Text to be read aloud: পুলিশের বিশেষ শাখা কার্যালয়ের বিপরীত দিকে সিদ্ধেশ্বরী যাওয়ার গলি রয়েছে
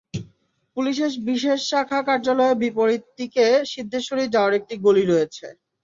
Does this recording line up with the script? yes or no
no